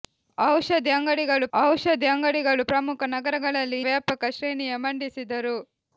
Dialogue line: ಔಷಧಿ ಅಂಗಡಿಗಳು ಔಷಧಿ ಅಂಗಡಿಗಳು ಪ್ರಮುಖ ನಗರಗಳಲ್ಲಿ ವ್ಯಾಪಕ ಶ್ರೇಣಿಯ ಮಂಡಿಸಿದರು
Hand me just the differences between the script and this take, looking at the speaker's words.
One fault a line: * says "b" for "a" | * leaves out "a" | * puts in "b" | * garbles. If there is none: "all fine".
all fine